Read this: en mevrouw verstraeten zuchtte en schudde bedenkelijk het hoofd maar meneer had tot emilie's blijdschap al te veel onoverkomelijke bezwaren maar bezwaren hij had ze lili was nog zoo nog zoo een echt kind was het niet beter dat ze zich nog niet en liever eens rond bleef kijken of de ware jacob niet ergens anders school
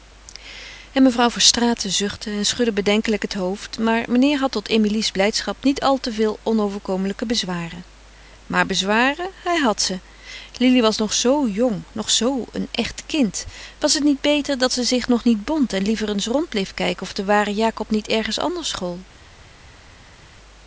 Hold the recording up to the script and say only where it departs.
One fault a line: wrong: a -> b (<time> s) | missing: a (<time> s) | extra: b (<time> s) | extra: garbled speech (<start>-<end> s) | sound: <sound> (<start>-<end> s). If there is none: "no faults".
extra: niet (5.6 s)
extra: jong (11.5 s)
extra: bond (15.4 s)